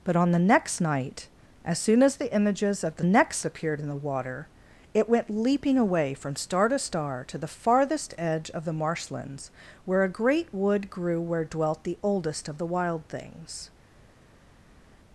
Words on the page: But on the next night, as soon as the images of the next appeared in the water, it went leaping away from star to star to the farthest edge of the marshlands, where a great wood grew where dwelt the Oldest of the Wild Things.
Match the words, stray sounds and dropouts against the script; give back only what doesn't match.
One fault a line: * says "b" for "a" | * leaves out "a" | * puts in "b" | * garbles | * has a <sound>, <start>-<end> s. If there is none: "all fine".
all fine